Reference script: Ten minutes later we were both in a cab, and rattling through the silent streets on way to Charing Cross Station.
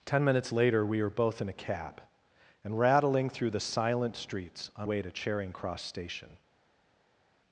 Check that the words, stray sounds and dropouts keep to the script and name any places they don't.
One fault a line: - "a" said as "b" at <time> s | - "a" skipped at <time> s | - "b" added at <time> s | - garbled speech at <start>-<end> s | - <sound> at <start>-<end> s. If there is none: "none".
none